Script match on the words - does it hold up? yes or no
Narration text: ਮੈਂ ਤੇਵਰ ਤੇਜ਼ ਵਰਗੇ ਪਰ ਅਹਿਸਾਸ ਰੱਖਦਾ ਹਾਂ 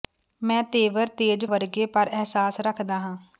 yes